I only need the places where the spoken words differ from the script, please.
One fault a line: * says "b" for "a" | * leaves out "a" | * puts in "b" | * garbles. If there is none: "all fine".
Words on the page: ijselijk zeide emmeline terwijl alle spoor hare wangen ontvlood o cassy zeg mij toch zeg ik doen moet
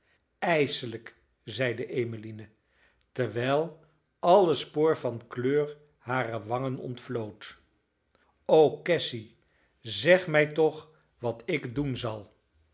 * puts in "van kleur"
* says "wat" for "zeg"
* says "zal" for "moet"